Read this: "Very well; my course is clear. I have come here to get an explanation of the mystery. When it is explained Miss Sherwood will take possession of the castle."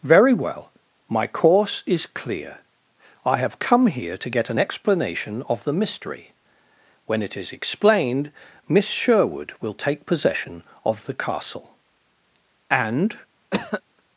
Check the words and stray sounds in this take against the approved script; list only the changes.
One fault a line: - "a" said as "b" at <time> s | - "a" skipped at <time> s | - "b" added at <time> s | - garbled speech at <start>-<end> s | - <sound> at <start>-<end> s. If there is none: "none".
- "And" added at 12.7 s
- cough at 13.5-13.8 s